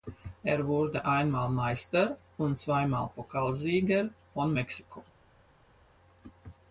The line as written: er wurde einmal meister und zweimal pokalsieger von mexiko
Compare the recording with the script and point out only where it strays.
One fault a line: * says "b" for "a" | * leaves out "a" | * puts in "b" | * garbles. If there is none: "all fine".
all fine